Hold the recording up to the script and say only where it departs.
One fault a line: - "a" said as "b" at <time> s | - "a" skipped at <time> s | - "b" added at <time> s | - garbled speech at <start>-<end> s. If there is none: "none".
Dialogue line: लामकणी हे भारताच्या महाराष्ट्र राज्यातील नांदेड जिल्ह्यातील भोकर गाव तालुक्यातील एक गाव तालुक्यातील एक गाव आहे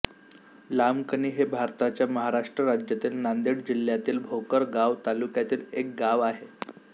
- "तालुक्यातील एक गाव" skipped at 6.2 s